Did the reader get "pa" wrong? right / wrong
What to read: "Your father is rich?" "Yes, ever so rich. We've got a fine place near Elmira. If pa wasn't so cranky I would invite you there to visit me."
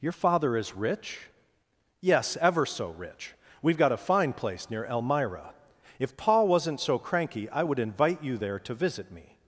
wrong